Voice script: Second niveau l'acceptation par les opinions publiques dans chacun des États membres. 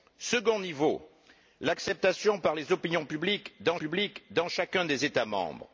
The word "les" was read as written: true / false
true